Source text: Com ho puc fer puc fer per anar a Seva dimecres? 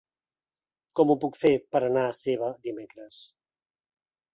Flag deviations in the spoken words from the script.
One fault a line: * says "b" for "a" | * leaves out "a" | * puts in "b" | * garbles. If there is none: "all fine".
* leaves out "puc fer"